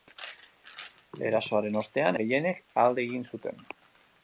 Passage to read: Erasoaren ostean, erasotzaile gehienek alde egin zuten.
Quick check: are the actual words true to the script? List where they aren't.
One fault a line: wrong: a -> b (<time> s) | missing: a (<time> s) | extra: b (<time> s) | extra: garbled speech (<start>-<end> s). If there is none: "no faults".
missing: erasotzaile (2.2 s)